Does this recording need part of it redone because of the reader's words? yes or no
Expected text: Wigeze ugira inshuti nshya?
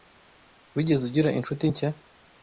no